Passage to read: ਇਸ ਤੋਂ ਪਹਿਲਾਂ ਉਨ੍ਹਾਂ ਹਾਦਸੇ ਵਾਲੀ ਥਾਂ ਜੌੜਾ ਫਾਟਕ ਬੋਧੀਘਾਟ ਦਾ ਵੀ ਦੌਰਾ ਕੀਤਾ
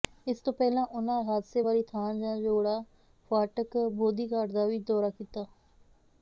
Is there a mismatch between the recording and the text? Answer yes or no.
no